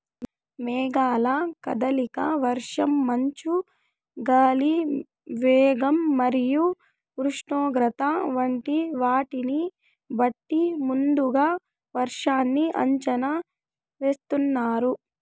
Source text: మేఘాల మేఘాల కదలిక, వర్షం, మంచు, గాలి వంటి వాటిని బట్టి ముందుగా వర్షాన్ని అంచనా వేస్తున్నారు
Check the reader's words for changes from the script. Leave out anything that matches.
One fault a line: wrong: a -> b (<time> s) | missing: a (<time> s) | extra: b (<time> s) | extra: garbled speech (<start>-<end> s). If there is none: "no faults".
missing: మేఘాల (1.3 s)
extra: వేగం మరియు ఉష్ణోగ్రత (5.4 s)